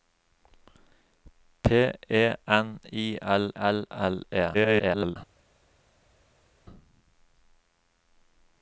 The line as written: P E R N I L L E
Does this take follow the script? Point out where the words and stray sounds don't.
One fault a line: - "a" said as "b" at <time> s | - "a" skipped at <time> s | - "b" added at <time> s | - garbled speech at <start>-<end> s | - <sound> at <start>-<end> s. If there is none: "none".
- "R" skipped at 2.3 s
- "L" added at 3.9 s
- garbled speech at 4.5-5.2 s